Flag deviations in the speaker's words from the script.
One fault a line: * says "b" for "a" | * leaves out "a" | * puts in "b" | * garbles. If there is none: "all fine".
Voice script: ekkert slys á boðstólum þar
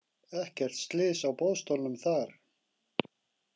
all fine